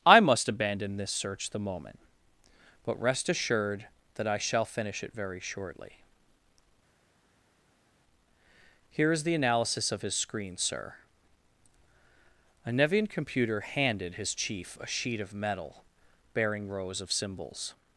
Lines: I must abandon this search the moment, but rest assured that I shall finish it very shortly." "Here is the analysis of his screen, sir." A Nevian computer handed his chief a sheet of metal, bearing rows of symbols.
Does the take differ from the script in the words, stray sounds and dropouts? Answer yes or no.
no